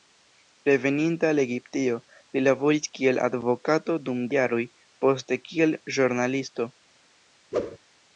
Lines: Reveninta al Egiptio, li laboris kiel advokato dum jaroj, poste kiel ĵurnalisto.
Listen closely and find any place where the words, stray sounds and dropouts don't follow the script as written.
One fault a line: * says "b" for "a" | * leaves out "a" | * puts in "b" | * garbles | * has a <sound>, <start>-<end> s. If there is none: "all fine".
* has a whoosh, 7.5-7.8 s